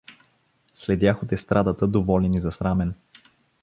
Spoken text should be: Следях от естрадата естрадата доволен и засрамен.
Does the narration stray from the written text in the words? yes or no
yes